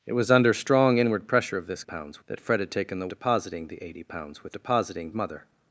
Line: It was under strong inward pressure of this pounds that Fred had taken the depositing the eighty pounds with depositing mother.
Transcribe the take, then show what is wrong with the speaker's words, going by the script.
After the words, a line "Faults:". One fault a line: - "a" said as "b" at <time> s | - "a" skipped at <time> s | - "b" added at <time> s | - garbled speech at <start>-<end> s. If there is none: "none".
It was under strong inward pressure of this pounds that Fred had taken the depositing the eighty pounds with depositing mother.
Faults:
none